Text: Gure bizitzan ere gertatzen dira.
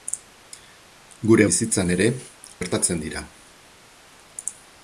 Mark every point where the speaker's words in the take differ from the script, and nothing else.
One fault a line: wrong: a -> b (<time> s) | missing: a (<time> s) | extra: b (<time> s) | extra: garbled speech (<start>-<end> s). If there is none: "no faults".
no faults